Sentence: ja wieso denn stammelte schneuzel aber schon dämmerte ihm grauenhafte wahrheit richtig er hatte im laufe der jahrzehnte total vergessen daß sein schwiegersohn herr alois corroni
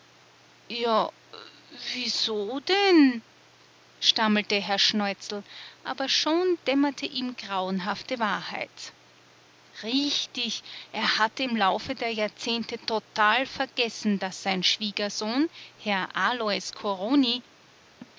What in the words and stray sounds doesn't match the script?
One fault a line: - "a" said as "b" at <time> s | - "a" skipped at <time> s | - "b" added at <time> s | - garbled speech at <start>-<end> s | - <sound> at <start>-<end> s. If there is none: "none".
- "herr" added at 4.5 s
- laugh at 18.0-18.1 s